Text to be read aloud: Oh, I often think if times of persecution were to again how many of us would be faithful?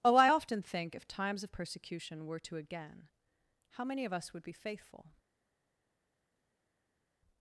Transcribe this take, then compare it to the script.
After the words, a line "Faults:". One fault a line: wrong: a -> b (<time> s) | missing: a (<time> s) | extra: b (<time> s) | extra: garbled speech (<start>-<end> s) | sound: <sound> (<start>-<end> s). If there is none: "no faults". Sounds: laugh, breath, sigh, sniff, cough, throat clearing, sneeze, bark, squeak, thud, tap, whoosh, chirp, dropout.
Oh, I often think if times of persecution were to again how many of us would be faithful?
Faults:
no faults